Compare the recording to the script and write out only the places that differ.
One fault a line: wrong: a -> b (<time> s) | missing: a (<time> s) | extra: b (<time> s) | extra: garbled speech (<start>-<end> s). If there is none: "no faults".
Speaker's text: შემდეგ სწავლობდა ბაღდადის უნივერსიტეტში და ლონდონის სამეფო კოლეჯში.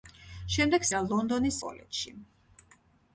missing: სწავლობდა ბაღდადის უნივერსიტეტში (0.8 s)
missing: სამეფო (1.6 s)